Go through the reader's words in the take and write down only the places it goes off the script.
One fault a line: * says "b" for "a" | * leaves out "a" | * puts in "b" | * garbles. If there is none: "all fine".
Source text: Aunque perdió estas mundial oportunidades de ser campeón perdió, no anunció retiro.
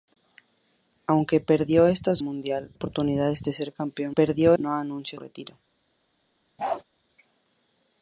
all fine